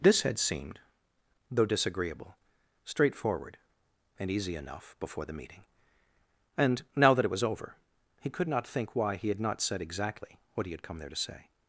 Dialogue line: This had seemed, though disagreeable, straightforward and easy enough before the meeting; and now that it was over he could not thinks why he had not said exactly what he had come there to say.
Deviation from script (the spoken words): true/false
true